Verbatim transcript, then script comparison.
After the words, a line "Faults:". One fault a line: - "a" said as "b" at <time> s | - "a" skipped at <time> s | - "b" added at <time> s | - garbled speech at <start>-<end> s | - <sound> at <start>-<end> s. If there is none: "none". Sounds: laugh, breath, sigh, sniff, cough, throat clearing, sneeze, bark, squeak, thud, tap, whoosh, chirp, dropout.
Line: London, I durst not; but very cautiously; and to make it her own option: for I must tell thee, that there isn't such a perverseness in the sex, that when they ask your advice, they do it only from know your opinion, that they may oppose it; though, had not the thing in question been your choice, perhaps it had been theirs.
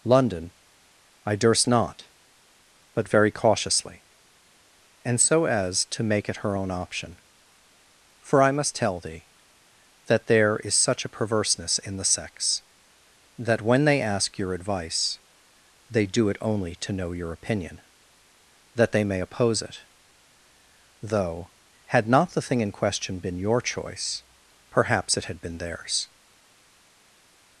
London, I durst not; but very cautiously; and so as to make it her own option: for I must tell thee, that there is such a perverseness in the sex, that when they ask your advice, they do it only to know your opinion, that they may oppose it; though, had not the thing in question been your choice, perhaps it had been theirs.
Faults:
- "so as" added at 5.2 s
- "isn't" said as "is" at 10.6 s
- "from" said as "to" at 16.7 s